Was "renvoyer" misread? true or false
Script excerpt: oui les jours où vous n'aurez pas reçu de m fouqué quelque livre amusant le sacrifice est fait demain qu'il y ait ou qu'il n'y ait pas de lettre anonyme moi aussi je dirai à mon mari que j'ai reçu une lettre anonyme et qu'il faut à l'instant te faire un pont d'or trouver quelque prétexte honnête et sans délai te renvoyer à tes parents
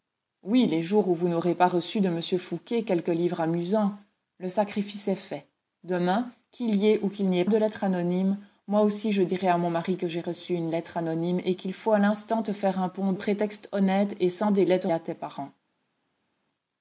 true